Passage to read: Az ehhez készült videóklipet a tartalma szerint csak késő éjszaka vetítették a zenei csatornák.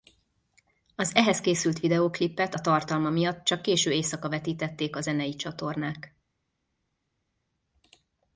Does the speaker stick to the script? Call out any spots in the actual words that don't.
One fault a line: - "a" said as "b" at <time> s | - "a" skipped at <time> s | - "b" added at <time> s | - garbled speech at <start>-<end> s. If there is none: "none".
- "szerint" said as "miatt" at 3.1 s